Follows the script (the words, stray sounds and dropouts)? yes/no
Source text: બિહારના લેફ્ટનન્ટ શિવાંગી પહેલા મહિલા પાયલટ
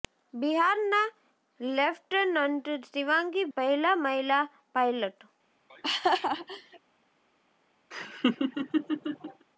no